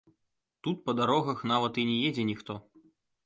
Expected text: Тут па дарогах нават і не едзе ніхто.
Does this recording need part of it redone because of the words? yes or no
no